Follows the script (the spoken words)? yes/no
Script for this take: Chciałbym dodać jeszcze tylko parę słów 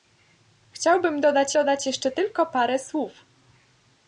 no